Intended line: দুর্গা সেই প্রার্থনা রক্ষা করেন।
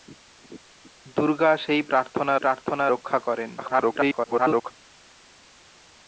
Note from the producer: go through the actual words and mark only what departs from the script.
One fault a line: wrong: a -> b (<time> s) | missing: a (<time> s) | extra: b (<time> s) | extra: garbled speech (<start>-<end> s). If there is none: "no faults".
extra: প্রার্থনা (2.3 s)
extra: garbled speech (3.6-4.7 s)